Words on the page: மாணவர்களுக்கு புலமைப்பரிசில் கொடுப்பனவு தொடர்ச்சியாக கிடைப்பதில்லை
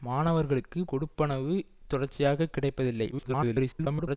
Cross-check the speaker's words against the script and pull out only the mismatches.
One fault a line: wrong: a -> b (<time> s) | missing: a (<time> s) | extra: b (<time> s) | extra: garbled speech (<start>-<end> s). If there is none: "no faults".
missing: புலமைப்பரிசில் (0.8 s)
extra: garbled speech (3.1-4.2 s)